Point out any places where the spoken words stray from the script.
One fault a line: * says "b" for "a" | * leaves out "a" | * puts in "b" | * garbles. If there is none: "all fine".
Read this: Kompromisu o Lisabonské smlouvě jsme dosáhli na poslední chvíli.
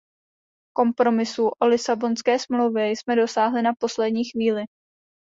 all fine